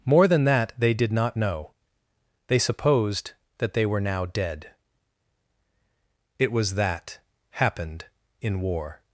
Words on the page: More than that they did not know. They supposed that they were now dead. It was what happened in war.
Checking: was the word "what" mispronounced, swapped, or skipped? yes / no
yes